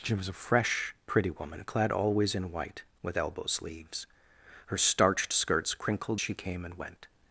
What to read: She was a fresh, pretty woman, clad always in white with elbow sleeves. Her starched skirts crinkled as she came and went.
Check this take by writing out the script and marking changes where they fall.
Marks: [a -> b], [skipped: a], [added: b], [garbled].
She was a fresh, pretty woman, clad always in white with elbow sleeves. Her starched skirts crinkled [skipped: as] she came and went.